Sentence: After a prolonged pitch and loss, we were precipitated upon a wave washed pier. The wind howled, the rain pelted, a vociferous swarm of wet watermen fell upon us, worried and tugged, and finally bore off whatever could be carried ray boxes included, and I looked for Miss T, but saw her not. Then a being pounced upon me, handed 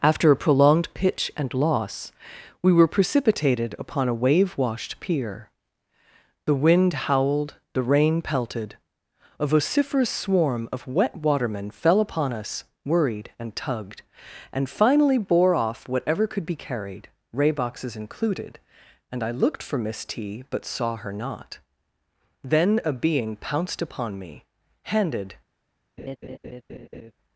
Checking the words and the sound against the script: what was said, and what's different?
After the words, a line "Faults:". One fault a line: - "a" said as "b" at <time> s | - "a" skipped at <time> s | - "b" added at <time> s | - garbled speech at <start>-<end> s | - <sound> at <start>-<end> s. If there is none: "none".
After a prolonged pitch and loss, we were precipitated upon a wave washed pier. The wind howled, the rain pelted, a vociferous swarm of wet watermen fell upon us, worried and tugged, and finally bore off whatever could be carried ray boxes included, and I looked for Miss T, but saw her not. Then a being pounced upon me, handed
Faults:
- laugh at 26.0-27.1 s